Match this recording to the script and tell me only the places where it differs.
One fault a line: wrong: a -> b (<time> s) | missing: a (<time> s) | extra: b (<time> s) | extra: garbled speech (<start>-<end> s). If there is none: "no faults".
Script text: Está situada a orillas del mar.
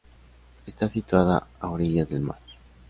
no faults